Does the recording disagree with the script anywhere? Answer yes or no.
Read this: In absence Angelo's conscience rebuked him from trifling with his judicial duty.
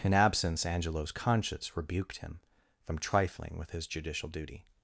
no